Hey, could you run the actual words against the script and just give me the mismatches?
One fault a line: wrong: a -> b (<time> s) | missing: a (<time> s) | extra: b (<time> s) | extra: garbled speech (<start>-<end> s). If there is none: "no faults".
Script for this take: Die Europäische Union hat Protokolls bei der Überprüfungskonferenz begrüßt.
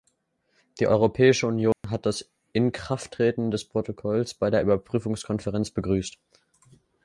extra: das Inkrafttreten des (2.1 s)